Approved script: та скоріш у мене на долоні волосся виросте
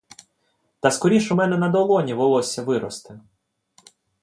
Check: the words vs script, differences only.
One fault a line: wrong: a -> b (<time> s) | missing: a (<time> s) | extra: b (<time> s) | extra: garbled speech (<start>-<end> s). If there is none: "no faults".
no faults